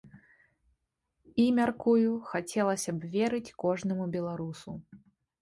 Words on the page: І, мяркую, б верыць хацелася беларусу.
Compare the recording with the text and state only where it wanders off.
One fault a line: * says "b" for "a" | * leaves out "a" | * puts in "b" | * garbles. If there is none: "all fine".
* puts in "хацелася"
* says "кожнаму" for "хацелася"